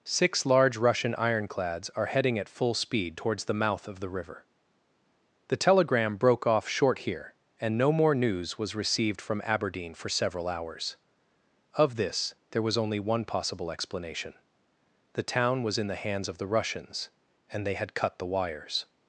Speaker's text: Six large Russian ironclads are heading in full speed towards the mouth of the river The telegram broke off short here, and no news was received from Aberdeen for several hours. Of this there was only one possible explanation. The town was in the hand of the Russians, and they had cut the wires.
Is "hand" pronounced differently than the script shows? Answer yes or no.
yes